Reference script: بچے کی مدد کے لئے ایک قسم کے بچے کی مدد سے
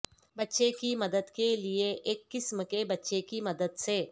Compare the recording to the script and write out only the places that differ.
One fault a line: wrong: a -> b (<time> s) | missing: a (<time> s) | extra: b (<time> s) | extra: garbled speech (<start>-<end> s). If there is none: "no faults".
no faults